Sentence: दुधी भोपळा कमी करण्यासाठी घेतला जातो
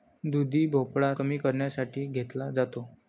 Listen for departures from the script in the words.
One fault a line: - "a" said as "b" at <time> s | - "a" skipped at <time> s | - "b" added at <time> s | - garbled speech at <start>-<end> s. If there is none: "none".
none